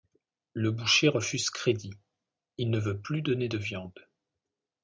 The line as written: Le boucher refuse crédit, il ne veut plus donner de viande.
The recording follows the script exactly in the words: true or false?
true